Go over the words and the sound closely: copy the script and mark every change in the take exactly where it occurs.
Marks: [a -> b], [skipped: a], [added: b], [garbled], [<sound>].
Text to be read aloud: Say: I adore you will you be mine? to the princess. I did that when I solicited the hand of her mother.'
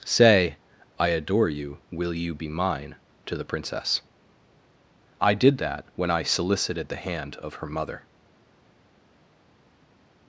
Say: I adore you will you be mine? to the princess. I did that when I solicited the hand of her mother.'